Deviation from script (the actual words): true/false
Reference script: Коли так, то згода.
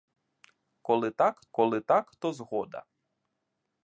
true